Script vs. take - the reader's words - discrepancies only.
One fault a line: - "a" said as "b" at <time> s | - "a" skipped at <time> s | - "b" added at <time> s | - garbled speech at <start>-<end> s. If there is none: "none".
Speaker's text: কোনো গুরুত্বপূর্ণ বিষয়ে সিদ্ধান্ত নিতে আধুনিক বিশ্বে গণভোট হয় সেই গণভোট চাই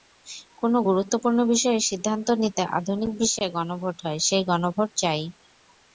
none